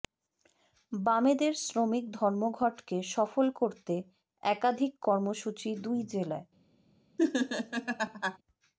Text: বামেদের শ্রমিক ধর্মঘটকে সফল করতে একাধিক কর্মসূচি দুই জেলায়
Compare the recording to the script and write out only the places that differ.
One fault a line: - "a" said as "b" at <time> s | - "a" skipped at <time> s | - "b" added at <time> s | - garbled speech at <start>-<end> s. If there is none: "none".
none